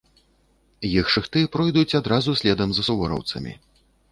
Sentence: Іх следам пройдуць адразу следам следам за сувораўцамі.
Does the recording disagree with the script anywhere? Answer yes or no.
yes